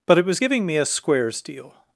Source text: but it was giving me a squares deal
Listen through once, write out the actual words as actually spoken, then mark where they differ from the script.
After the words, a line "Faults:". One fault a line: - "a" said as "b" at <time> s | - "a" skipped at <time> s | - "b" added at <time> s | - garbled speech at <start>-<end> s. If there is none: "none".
but it was giving me a squares deal
Faults:
none